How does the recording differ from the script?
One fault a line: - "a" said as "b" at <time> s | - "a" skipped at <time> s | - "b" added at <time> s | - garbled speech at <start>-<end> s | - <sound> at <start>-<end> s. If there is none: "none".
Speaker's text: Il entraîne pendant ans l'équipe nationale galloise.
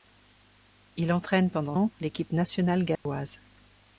- dropout at 3.0-3.1 s